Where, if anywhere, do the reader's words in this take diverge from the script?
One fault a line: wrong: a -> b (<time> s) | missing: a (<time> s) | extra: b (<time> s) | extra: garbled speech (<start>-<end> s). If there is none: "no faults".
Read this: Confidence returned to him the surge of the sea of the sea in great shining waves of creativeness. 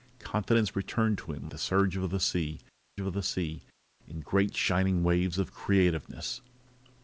no faults